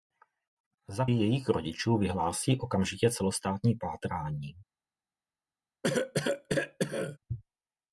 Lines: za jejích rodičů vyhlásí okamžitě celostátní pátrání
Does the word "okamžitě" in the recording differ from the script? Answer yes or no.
no